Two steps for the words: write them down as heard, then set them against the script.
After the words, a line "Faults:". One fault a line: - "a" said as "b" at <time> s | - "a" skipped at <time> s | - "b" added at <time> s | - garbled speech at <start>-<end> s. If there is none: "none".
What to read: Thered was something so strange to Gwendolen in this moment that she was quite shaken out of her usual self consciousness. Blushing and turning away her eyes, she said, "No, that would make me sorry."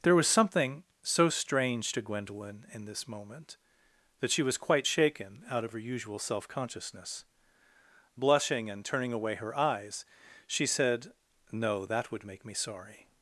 There was something so strange to Gwendolen in this moment that she was quite shaken out of her usual self consciousness. Blushing and turning away her eyes, she said, "No, that would make me sorry."
Faults:
- "Thered" said as "There" at 0.0 s